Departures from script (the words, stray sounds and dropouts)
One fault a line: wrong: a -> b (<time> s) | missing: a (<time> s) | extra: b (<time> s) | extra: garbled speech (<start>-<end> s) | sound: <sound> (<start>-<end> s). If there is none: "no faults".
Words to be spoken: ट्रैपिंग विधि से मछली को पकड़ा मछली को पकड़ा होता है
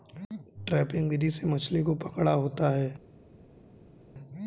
missing: मछली को पकड़ा (2.3 s)